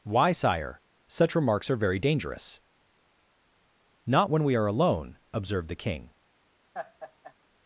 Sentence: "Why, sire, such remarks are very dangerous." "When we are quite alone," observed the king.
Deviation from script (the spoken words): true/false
true